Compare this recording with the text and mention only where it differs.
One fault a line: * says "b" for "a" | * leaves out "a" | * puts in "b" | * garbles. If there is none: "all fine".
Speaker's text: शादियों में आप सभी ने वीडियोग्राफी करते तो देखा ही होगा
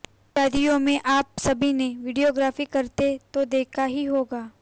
all fine